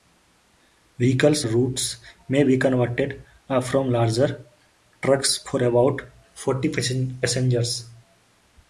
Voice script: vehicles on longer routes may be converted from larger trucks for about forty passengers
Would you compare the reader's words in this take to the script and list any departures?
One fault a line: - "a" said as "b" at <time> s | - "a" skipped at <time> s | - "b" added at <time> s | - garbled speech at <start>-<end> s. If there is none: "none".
- "on longer" skipped at 1.4 s